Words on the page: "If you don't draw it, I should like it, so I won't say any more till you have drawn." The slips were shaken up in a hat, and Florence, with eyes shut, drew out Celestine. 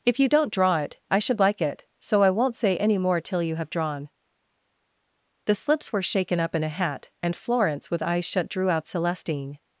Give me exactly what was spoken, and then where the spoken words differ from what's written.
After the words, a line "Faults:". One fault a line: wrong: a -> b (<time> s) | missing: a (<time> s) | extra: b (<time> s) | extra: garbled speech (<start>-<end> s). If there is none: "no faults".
"If you don't draw it, I should like it, so I won't say any more till you have drawn." The slips were shaken up in a hat, and Florence, with eyes shut, drew out Celestine.
Faults:
no faults